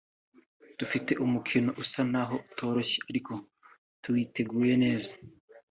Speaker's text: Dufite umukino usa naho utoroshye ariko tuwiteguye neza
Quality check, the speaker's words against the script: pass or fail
pass